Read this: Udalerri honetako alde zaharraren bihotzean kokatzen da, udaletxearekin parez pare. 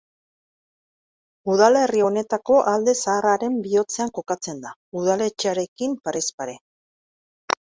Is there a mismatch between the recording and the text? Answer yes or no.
no